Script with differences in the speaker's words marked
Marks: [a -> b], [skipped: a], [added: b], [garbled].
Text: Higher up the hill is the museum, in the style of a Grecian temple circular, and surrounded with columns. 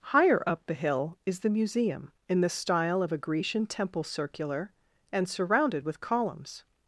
Higher up the hill is the museum, in the style of a Grecian temple circular, and surrounded with columns.